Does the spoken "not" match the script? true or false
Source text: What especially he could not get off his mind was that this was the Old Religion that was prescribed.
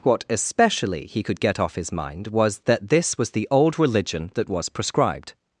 false